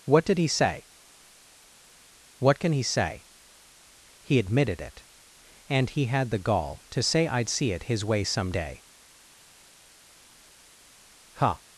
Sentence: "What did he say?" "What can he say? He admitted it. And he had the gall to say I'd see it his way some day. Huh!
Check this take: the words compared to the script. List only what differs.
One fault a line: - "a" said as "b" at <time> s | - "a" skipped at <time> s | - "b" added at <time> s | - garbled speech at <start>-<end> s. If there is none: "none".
none